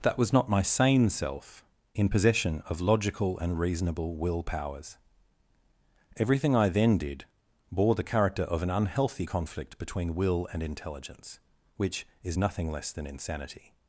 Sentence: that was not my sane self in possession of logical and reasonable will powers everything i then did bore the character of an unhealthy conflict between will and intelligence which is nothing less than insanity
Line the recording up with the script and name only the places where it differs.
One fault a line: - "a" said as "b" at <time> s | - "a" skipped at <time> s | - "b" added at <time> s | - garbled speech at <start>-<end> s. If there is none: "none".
none